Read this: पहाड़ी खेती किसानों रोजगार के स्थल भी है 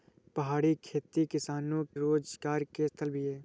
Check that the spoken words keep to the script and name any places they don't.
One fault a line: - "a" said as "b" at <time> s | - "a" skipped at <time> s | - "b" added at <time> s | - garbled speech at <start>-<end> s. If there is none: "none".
none